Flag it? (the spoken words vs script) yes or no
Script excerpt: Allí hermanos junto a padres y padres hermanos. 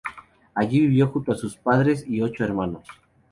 yes